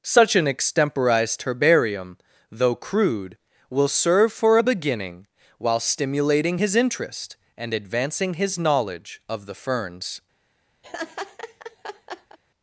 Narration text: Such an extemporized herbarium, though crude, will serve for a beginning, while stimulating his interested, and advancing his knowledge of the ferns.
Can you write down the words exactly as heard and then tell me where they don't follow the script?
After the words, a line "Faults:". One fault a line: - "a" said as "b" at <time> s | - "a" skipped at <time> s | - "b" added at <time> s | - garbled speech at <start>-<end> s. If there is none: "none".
Such an extemporized herbarium, though crude, will serve for a beginning, while stimulating his interest, and advancing his knowledge of the ferns.
Faults:
- "interested" said as "interest" at 6.7 s